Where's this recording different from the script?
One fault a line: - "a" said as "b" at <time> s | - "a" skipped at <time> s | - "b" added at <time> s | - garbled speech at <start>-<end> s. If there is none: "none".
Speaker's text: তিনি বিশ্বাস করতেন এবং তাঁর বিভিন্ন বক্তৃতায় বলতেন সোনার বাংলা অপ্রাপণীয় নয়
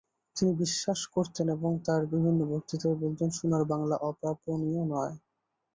none